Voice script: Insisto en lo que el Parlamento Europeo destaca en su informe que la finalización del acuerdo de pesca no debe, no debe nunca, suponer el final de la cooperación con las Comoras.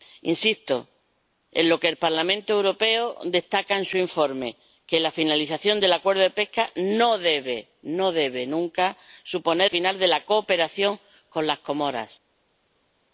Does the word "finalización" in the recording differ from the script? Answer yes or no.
no